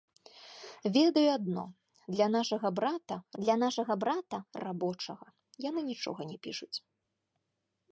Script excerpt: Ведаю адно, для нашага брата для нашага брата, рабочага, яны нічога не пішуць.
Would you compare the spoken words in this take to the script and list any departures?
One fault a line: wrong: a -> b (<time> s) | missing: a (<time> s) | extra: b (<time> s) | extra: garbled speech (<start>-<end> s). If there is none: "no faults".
no faults